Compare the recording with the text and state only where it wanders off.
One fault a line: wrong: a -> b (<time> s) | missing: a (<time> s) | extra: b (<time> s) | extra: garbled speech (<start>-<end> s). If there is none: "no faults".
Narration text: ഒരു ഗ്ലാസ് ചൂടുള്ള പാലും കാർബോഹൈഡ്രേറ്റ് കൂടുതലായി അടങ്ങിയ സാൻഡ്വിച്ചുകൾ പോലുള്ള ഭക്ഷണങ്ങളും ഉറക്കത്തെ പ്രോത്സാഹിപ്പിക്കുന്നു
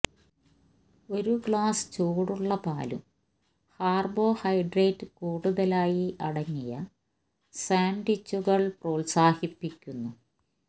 missing: പോലുള്ള ഭക്ഷണങ്ങളും ഉറക്കത്തെ (8.6 s)